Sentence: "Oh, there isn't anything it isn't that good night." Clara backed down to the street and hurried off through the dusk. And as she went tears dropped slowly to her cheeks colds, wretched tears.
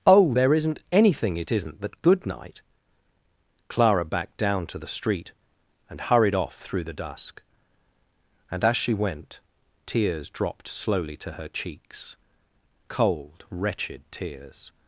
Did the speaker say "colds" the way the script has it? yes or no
no